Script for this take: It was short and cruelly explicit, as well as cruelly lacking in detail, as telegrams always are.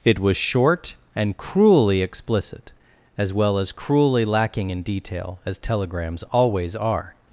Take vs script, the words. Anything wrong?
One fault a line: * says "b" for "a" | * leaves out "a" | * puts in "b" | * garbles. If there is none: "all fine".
all fine